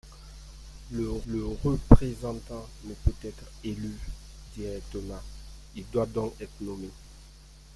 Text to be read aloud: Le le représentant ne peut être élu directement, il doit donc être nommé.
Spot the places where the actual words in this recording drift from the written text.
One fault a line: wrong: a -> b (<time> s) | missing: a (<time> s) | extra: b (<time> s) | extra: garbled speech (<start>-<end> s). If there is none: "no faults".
no faults